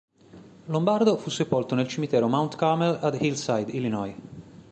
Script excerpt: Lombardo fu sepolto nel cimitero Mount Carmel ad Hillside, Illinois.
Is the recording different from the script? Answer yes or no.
no